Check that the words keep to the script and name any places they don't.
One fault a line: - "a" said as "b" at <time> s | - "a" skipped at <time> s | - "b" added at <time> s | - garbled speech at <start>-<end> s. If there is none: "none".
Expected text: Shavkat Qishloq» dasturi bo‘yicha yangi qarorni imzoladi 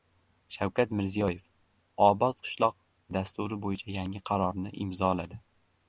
- "Mirziyoyev Obod" added at 1.0 s